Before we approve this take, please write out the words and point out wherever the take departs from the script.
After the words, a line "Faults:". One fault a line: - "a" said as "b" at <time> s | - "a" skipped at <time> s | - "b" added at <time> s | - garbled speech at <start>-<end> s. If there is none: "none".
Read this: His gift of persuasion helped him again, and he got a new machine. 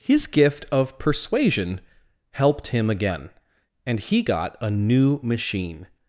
His gift of persuasion helped him again, and he got a new machine.
Faults:
none